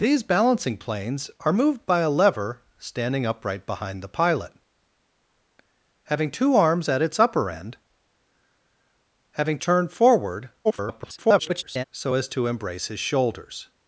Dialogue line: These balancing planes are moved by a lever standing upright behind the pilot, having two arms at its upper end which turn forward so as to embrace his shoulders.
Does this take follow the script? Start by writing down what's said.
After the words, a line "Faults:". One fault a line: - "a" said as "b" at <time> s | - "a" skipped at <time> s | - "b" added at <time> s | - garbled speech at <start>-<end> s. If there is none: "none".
These balancing planes are moved by a lever standing upright behind the pilot, having two arms at its upper end having turn forward [garbled] so as to embrace his shoulders.
Faults:
- "which" said as "having" at 9.3 s
- garbled speech at 10.6-11.8 s